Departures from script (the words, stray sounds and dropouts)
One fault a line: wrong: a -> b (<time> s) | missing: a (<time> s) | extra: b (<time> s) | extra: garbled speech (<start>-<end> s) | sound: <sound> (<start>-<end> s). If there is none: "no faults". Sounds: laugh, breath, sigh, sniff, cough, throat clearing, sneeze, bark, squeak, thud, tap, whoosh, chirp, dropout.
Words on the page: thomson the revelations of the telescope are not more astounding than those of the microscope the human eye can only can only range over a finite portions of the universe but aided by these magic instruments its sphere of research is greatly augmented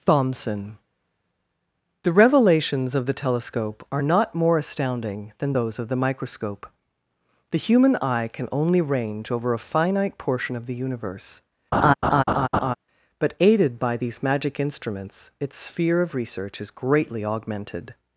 missing: can only (8.8 s)
wrong: portions -> portion (10.2 s)
sound: laugh (11.7-12.7 s)